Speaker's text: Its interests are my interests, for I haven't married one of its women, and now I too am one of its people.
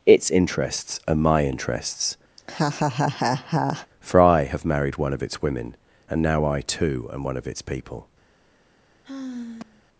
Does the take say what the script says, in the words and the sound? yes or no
no